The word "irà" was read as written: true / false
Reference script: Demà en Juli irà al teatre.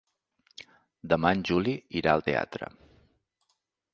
true